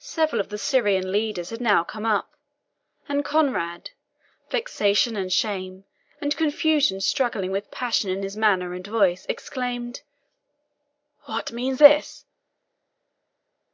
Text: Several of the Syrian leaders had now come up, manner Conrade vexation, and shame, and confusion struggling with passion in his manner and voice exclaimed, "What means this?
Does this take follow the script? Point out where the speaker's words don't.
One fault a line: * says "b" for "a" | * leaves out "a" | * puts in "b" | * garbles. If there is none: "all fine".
* says "and" for "manner"